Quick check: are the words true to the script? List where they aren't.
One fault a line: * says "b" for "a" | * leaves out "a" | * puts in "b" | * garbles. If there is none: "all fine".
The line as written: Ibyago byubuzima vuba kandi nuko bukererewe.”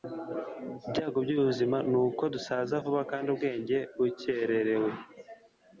* puts in "nuko dusaza"
* says "ubwenge" for "nuko"